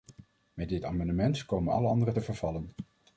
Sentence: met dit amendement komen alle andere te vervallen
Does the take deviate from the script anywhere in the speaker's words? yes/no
no